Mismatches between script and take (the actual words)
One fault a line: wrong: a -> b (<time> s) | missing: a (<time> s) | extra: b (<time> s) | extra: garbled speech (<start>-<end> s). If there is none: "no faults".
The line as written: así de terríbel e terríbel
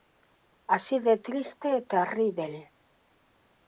wrong: terríbel -> triste (1.2 s)